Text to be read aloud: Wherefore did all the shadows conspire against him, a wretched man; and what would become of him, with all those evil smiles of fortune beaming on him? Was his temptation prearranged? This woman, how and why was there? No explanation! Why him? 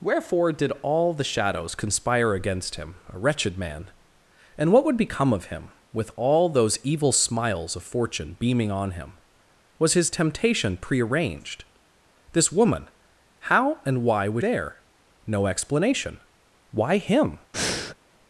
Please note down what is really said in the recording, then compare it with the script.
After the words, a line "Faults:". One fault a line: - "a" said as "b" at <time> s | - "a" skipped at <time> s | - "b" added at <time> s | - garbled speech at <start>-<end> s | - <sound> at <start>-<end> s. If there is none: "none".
Wherefore did all the shadows conspire against him, a wretched man; and what would become of him, with all those evil smiles of fortune beaming on him? Was his temptation prearranged? This woman, how and why was there? No explanation! Why him?
Faults:
- breath at 17.5-18.0 s